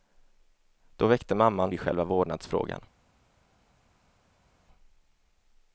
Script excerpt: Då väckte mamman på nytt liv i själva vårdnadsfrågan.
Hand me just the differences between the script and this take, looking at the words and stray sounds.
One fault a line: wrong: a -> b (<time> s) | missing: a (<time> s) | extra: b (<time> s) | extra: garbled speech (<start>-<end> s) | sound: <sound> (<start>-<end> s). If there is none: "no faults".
missing: på nytt liv (1.7 s)